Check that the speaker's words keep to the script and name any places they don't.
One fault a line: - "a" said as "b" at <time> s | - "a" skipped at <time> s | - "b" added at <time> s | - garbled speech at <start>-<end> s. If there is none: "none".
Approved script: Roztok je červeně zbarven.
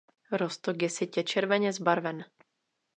- "sytě" added at 0.9 s